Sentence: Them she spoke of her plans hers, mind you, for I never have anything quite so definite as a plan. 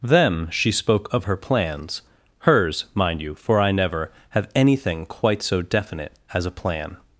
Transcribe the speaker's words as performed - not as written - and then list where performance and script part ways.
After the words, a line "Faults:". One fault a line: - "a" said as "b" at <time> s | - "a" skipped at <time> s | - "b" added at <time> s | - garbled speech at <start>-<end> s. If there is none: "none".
Them she spoke of her plans hers, mind you, for I never have anything quite so definite as a plan.
Faults:
none